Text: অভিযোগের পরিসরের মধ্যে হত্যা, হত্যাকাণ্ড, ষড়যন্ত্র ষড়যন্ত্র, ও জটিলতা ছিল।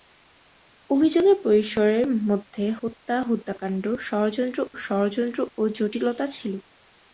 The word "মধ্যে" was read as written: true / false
true